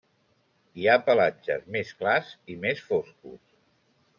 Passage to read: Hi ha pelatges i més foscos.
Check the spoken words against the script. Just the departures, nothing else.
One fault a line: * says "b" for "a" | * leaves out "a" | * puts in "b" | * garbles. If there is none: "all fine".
* puts in "més clars"